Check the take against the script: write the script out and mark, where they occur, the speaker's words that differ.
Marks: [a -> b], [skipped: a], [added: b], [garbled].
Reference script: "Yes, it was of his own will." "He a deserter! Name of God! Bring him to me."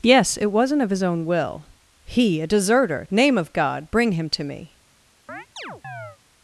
"Yes, it [was -> wasn't] of his own will." "He a deserter! Name of God! Bring him to me."